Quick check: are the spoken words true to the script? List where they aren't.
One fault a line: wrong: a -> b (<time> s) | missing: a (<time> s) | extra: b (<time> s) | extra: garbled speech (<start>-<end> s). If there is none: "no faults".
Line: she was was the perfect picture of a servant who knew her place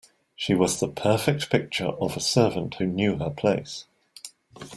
missing: was (0.8 s)